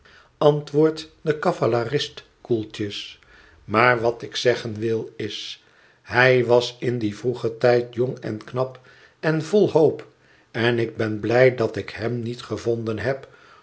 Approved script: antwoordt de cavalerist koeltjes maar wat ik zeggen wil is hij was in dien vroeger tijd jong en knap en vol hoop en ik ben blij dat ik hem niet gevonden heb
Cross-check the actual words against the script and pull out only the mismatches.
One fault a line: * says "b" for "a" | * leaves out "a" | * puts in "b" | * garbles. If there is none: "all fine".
all fine